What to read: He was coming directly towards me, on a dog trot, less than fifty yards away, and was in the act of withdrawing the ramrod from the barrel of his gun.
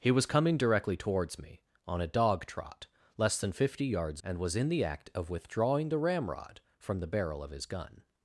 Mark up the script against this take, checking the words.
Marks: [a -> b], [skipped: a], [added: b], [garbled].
He was coming directly towards me, on a dog trot, less than fifty yards [skipped: away,] and was in the act of withdrawing the ramrod from the barrel of his gun.